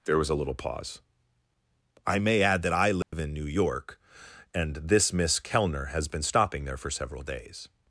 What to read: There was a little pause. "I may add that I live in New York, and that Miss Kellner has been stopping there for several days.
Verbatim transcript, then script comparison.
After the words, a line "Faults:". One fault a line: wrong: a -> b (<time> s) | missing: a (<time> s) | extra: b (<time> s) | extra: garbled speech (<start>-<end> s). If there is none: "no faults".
There was a little pause. "I may add that I live in New York, and this Miss Kellner has been stopping there for several days.
Faults:
wrong: that -> this (4.8 s)